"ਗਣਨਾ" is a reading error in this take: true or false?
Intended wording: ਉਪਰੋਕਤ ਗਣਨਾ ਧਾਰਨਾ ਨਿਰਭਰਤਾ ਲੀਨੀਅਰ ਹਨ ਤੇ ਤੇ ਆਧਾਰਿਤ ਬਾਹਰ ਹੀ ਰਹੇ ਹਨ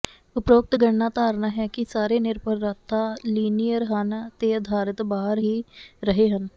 false